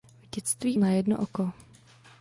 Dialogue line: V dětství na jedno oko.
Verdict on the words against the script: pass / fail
pass